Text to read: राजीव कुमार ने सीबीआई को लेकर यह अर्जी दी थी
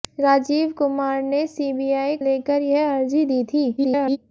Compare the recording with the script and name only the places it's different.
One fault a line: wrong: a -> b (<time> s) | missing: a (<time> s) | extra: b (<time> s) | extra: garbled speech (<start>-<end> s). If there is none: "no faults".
missing: को (2.2 s)
extra: garbled speech (3.8-4.2 s)